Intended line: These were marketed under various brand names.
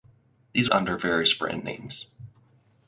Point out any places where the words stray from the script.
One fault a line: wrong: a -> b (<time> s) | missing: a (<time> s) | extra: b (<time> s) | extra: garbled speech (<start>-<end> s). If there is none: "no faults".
missing: were marketed (0.7 s)